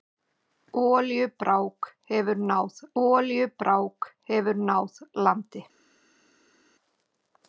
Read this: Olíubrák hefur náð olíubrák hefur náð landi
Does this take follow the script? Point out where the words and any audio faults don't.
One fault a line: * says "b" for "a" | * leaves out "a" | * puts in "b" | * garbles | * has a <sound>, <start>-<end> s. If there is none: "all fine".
all fine